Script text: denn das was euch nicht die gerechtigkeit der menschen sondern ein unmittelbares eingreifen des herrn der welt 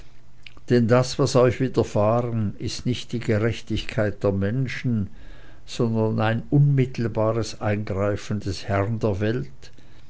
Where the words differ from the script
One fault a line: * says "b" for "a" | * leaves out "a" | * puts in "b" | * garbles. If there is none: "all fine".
* puts in "widerfahren ist"